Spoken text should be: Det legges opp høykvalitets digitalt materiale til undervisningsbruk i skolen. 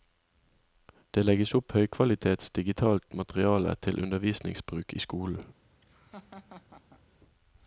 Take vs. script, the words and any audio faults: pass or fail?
fail